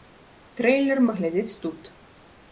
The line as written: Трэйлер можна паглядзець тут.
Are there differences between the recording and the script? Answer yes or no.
yes